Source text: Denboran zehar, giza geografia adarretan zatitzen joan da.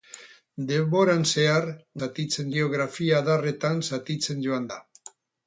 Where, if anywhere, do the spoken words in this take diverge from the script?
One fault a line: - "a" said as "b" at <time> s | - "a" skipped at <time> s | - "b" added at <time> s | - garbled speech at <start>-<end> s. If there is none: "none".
- "giza" said as "zatitzen" at 2.0 s